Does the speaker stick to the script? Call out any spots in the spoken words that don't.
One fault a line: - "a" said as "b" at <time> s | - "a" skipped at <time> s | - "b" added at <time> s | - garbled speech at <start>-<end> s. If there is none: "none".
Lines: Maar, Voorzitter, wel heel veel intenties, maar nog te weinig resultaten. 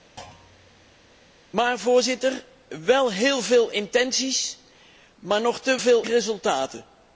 - "weinig" said as "veel" at 5.8 s